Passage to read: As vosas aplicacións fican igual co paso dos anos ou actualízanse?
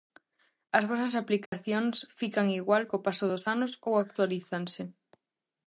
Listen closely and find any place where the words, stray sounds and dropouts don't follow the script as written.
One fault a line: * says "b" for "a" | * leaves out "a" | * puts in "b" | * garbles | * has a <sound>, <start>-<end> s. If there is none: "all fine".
* has a dropout, 1.5-1.5 s